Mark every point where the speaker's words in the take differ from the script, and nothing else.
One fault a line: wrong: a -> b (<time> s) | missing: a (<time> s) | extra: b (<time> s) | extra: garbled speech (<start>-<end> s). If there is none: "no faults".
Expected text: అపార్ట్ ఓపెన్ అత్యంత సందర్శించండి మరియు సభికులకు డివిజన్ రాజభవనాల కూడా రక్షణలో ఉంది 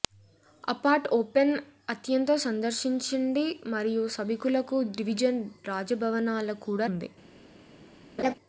missing: రక్షణలో (6.9 s)